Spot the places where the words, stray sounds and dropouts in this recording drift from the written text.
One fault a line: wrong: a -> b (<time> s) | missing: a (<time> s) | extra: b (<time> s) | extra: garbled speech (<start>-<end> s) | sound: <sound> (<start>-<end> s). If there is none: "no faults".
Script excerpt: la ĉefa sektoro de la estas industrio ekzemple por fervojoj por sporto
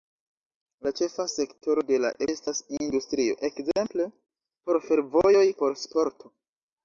no faults